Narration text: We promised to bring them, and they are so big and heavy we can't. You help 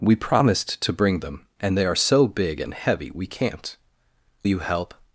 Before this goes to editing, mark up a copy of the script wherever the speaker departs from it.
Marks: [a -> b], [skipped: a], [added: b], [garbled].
We promised to bring them, and they are so big and heavy we can't. You help